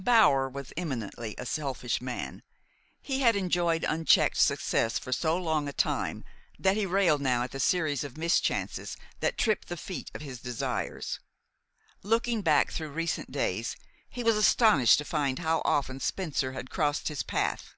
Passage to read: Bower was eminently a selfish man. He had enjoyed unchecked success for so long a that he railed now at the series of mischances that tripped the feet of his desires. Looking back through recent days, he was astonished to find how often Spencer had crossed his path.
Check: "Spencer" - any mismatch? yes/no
no